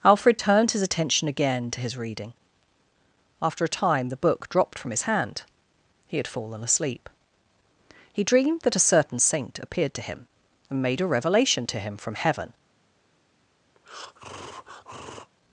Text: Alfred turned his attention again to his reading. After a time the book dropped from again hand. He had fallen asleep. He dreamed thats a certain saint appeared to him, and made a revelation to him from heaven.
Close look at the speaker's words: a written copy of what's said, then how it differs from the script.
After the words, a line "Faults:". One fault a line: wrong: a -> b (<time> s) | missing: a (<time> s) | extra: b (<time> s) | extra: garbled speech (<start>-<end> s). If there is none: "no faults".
Alfred turned his attention again to his reading. After a time the book dropped from his hand. He had fallen asleep. He dreamed that a certain saint appeared to him, and made a revelation to him from heaven.
Faults:
wrong: again -> his (4.9 s)
wrong: thats -> that (8.6 s)